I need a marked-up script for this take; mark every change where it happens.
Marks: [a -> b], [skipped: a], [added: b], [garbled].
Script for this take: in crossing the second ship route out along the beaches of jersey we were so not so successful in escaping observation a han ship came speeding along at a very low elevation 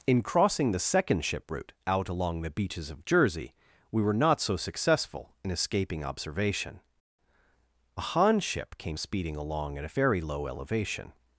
in crossing the second ship route out along the beaches of jersey we were [skipped: so] not so successful in escaping observation a han ship came speeding along at a very low elevation